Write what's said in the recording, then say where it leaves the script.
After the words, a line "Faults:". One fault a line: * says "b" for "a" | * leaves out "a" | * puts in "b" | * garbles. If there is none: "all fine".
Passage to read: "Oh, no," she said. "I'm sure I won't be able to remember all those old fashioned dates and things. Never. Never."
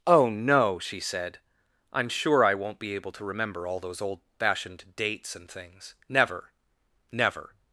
"Oh, no," she said. "I'm sure I won't be able to remember all those old fashioned dates and things. Never. Never."
Faults:
all fine